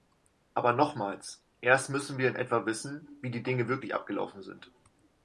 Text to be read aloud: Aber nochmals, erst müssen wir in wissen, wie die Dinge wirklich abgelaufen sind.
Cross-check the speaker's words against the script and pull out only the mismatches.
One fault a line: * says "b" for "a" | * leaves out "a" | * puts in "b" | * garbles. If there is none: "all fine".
* puts in "etwa"